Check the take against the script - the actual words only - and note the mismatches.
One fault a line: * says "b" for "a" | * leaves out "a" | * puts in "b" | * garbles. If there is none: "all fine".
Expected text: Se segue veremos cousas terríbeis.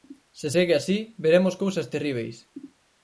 * puts in "así"